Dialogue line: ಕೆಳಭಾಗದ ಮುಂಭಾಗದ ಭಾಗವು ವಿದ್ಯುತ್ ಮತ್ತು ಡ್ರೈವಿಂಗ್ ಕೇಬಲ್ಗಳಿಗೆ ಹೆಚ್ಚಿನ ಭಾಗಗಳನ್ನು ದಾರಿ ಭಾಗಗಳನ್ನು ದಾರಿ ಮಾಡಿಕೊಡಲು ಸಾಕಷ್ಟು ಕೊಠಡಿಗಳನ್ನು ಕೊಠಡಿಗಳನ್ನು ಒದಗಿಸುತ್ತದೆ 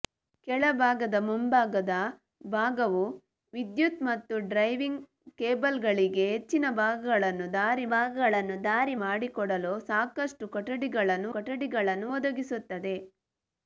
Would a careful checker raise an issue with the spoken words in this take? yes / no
no